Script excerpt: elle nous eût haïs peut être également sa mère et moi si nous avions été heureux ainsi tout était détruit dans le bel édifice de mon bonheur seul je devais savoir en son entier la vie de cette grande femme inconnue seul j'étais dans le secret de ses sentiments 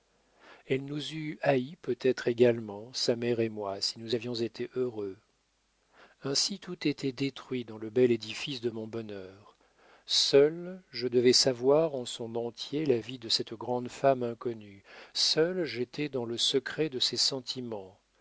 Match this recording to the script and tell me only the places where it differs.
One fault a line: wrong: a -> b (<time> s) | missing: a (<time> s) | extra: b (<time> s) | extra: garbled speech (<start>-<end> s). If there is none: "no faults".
no faults